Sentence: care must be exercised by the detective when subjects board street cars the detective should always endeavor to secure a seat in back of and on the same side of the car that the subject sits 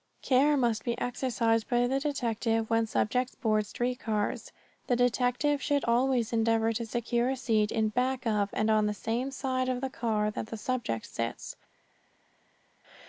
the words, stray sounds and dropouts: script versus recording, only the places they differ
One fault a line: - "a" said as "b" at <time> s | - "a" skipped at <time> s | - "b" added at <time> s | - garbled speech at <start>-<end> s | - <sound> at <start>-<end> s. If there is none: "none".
none